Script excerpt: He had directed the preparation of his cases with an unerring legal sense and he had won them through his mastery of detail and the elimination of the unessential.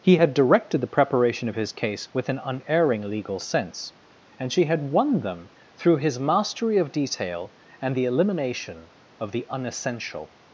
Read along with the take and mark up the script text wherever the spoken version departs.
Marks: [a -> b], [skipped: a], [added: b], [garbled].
He had directed the preparation of his [cases -> case] with an unerring legal sense and [he -> she] had won them through his mastery of detail and the elimination of the unessential.